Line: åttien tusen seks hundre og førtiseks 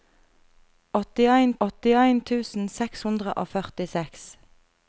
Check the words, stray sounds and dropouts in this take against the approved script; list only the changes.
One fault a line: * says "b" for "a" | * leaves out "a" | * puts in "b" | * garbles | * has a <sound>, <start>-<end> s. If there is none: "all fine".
* puts in "åttien"